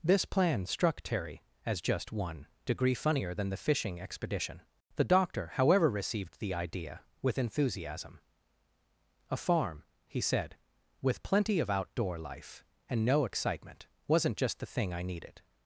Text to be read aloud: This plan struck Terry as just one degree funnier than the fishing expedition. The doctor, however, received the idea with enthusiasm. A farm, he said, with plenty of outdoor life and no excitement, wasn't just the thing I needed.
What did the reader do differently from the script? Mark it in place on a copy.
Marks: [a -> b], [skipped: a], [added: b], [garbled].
This plan struck Terry as just one degree funnier than the fishing expedition. The doctor, however, received the idea with enthusiasm. A farm, he said, with plenty of outdoor life and no excitement, wasn't just the thing I needed.